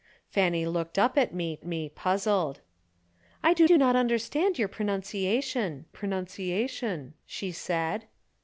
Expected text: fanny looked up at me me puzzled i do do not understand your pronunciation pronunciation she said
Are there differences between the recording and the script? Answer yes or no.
no